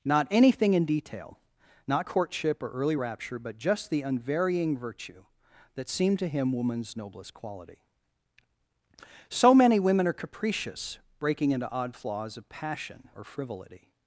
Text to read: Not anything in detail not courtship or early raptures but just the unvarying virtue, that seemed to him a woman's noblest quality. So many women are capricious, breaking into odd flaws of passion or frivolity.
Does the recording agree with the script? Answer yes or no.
no